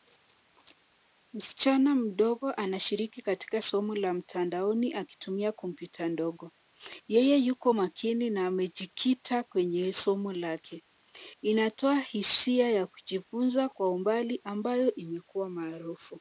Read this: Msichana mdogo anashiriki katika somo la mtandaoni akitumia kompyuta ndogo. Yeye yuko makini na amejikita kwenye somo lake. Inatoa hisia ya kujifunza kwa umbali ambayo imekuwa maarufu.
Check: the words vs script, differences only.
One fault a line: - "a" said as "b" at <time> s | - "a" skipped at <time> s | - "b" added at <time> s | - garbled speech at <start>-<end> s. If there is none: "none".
none